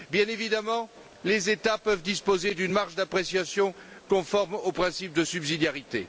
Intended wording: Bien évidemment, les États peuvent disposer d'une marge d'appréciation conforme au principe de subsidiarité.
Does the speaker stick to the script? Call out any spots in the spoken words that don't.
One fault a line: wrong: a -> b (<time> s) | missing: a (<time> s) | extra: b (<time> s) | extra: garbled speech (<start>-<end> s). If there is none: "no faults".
no faults